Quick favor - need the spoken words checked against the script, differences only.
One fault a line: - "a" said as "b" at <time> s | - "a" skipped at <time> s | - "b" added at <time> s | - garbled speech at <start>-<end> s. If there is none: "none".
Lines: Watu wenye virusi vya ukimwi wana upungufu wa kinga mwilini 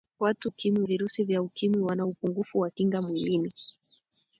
- "wenye" said as "ukimwi" at 0.4 s